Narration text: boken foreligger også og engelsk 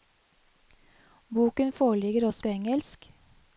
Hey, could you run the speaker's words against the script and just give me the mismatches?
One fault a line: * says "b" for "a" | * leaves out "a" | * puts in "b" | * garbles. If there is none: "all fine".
all fine